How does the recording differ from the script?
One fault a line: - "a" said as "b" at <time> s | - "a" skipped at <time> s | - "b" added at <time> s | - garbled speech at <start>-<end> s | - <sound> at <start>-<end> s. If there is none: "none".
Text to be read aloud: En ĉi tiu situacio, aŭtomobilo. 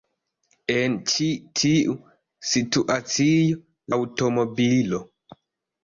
none